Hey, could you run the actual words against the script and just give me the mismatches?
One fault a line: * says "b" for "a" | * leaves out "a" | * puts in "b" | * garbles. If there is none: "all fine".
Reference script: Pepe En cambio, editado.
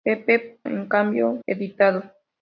all fine